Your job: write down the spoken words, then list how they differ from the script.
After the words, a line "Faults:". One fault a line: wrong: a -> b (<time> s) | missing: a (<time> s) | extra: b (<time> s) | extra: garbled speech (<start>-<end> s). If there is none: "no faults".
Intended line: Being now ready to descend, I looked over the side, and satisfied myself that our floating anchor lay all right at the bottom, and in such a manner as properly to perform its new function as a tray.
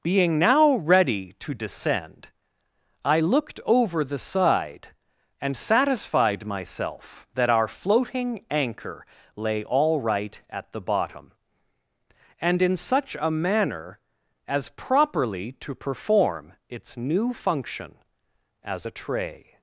Being now ready to descend, I looked over the side, and satisfied myself that our floating anchor lay all right at the bottom, and in such a manner as properly to perform its new function as a tray.
Faults:
no faults